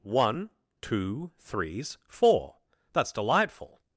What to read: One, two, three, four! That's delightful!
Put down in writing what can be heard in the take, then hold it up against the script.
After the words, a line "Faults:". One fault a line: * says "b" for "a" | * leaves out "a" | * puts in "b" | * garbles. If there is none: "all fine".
One, two, threes, four! That's delightful!
Faults:
* says "threes" for "three"